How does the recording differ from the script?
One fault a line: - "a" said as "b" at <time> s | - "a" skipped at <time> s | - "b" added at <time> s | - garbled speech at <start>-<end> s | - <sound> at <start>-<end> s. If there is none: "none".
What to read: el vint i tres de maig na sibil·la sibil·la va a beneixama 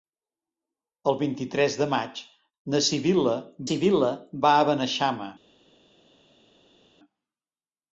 none